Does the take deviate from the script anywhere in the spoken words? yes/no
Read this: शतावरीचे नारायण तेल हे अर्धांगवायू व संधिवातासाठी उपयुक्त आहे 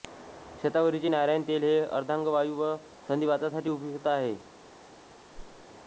no